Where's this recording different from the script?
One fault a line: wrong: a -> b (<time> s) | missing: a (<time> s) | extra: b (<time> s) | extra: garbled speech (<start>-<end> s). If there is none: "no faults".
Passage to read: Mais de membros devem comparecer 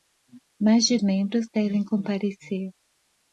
no faults